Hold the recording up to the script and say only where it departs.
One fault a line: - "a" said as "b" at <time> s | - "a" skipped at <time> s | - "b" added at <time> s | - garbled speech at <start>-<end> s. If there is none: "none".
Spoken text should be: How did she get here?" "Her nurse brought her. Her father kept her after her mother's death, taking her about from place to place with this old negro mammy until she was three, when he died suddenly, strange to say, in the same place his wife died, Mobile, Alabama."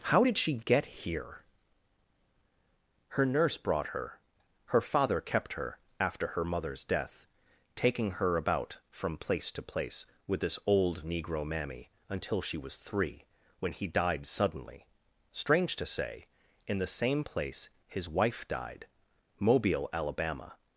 none